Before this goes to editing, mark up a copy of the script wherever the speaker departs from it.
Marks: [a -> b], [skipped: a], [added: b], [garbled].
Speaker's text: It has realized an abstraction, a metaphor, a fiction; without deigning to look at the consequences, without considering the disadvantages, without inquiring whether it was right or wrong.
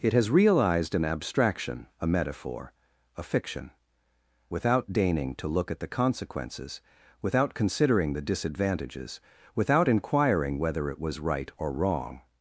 It has realized an abstraction, a metaphor, a fiction; without deigning to look at the consequences, without considering the disadvantages, without inquiring whether it was right or wrong.